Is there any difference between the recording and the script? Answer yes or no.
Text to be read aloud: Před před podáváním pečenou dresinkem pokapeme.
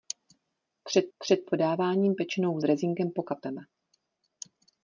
no